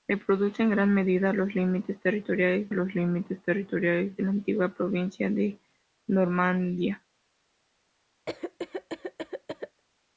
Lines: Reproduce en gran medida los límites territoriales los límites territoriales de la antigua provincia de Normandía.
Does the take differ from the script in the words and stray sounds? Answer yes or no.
yes